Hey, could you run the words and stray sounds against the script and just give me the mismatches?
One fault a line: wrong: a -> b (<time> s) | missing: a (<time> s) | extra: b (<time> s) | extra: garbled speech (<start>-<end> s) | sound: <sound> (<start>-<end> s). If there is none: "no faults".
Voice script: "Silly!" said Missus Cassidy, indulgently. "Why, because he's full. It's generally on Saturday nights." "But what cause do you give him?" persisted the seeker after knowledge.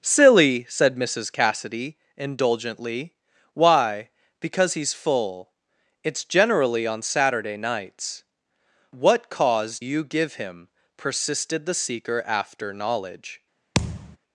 missing: But (8.2 s)
missing: do (9.8 s)
sound: thud (13.7-14.2 s)